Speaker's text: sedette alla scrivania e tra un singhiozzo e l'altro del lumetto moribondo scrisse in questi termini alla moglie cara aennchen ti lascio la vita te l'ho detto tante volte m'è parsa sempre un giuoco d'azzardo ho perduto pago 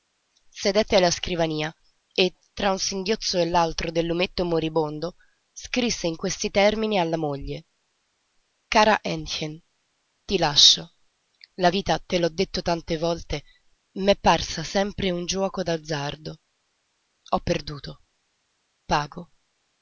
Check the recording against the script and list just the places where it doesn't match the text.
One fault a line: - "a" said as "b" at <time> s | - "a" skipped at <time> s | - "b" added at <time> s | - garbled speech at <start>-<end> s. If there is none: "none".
none